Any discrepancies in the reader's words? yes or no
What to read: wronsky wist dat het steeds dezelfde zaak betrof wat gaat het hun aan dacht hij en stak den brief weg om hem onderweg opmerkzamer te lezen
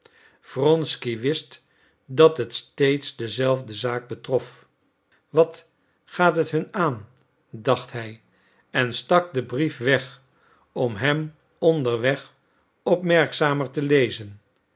no